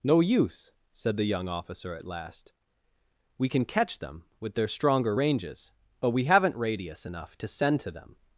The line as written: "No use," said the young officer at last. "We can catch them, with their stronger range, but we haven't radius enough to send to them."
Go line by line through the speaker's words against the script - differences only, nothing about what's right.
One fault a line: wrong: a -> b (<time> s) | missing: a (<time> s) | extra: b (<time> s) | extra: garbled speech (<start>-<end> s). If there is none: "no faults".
wrong: range -> ranges (5.1 s)